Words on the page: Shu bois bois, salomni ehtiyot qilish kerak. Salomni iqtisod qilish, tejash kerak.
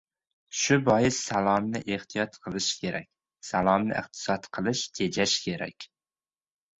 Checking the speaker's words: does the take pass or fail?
fail